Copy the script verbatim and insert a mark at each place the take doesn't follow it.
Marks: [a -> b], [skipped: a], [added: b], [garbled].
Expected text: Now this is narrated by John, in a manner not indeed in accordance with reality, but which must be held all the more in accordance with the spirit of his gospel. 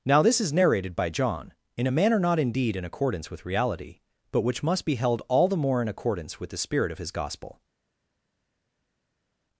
Now this is narrated by John, in a manner not indeed in accordance with reality, but which must be held all the more in accordance with the spirit of his gospel.